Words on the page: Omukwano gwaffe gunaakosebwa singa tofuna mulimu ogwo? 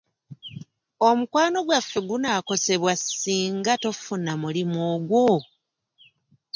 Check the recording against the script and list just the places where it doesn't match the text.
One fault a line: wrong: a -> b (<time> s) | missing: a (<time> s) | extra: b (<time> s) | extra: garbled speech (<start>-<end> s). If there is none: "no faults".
no faults